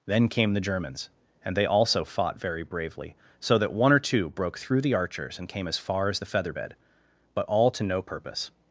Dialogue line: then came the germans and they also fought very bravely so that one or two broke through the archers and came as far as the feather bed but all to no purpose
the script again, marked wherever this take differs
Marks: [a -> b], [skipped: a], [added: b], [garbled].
then came the germans and they also fought very bravely so that one or two broke through the archers and came as far as the feather bed but all to no purpose